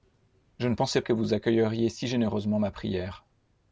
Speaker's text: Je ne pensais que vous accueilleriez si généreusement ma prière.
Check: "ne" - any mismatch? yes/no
no